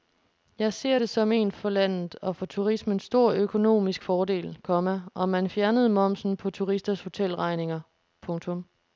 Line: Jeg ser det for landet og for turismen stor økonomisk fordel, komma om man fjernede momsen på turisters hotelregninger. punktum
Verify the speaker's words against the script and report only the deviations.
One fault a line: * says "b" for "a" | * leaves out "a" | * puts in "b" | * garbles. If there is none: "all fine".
* puts in "som en"